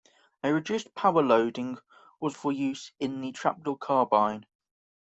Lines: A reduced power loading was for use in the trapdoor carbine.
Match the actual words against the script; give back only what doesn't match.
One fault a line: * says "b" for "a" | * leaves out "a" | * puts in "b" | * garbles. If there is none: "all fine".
all fine